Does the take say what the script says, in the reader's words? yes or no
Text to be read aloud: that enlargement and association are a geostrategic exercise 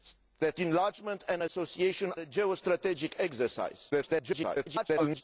no